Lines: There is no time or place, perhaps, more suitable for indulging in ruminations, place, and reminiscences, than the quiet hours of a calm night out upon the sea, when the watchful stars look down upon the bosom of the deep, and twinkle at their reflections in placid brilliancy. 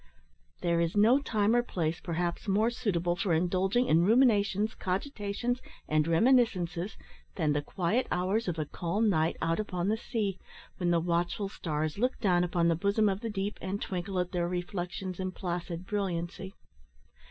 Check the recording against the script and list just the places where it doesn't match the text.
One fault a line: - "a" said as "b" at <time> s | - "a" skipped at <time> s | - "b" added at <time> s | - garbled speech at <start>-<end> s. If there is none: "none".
- "place" said as "cogitations" at 4.7 s